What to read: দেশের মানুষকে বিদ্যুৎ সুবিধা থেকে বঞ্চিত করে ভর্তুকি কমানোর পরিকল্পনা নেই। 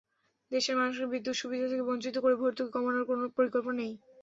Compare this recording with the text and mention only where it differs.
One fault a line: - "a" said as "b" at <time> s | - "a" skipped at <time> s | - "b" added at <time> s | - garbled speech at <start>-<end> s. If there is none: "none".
- "কোনো" added at 3.1 s